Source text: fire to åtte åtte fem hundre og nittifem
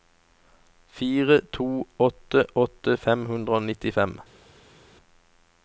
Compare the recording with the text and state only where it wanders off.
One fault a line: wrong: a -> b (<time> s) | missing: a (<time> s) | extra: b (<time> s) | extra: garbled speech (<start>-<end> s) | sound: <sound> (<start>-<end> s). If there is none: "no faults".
no faults